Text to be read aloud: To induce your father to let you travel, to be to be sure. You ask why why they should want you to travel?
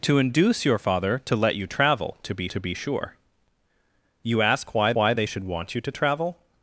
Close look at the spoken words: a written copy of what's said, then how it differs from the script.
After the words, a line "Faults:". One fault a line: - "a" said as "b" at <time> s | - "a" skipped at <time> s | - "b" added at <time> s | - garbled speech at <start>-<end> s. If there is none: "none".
To induce your father to let you travel, to be to be sure. You ask why why they should want you to travel?
Faults:
none